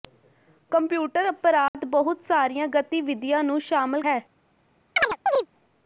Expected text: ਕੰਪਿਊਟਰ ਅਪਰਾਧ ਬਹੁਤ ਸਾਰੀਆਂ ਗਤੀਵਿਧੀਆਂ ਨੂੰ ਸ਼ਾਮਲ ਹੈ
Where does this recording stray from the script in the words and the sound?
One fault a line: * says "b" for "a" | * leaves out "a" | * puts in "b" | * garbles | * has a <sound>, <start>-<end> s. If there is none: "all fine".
* has a dropout, 1.7-1.7 s
* has a chirp, 5.0-5.5 s